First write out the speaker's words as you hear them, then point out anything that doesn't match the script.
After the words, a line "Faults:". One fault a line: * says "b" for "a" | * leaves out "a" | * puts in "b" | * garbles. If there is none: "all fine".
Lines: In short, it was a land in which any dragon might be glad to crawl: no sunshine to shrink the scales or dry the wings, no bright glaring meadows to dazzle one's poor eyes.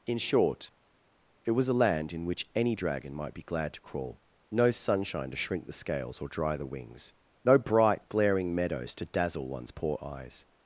In short, it was a land in which any dragon might be glad to crawl: no sunshine to shrink the scales or dry the wings, no bright glaring meadows to dazzle one's poor eyes.
Faults:
all fine